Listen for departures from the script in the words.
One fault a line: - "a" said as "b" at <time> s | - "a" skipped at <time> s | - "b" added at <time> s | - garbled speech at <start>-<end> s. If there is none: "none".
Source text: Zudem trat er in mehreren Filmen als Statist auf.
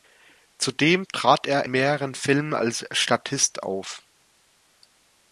- "in" skipped at 1.7 s